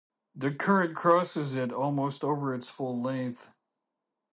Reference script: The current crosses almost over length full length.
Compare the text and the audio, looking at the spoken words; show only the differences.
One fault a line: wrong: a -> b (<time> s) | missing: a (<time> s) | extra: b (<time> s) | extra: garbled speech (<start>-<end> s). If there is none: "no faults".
extra: it (1.6 s)
wrong: length -> its (2.5 s)